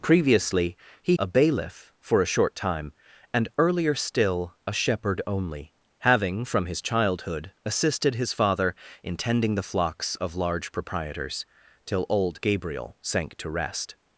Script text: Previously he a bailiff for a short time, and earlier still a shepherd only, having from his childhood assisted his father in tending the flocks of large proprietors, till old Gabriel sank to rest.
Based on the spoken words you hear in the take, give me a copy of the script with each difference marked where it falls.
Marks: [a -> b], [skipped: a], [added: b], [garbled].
Previously he a bailiff for a short time, and earlier still a shepherd only, having from his childhood assisted his father in tending the flocks of large proprietors, till old Gabriel sank to rest.